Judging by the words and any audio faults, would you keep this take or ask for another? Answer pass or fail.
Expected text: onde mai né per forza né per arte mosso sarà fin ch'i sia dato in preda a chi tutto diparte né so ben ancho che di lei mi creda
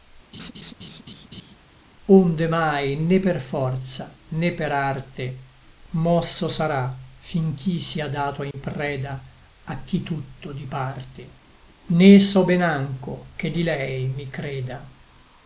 fail